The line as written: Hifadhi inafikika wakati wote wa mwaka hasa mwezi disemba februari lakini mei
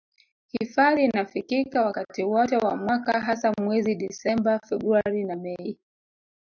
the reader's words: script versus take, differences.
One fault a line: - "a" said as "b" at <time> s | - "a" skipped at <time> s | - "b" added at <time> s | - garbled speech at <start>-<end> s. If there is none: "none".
- "lakini" said as "na" at 5.2 s